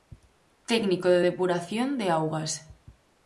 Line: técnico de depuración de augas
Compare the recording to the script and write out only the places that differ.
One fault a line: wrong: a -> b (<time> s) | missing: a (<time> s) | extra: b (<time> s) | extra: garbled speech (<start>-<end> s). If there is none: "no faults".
no faults